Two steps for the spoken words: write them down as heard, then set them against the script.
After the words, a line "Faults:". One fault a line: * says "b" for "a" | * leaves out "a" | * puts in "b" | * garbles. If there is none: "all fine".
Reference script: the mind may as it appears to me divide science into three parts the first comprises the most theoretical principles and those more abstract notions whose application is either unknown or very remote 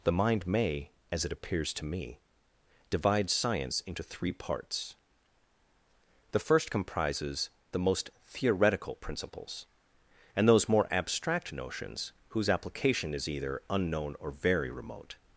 the mind may as it appears to me divide science into three parts the first comprises the most theoretical principles and those more abstract notions whose application is either unknown or very remote
Faults:
all fine